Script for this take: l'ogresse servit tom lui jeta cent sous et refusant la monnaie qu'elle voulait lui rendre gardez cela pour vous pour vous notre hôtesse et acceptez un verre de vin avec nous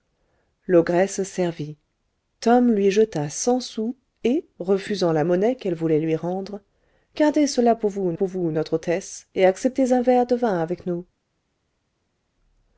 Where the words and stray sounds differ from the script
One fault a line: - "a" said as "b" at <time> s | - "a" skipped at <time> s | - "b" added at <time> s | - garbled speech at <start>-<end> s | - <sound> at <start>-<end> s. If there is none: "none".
none